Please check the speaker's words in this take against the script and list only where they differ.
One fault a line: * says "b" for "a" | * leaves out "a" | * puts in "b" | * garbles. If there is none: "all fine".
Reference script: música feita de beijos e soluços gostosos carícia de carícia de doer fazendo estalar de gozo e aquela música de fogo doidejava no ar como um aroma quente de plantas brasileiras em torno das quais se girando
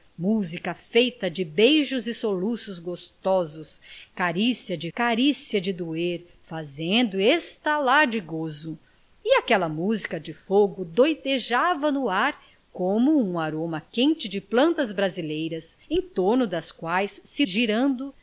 all fine